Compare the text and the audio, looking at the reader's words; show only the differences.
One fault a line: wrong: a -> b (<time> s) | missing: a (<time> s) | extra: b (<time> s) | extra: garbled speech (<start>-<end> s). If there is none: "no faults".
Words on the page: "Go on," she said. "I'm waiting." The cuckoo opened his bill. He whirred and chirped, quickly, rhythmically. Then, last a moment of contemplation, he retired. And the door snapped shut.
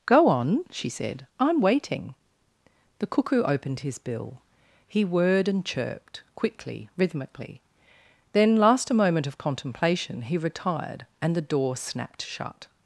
no faults